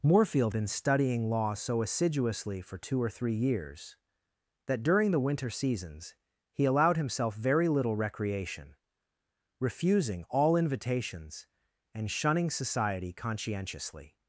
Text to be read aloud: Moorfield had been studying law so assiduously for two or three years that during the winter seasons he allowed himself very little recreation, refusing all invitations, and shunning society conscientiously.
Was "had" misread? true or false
true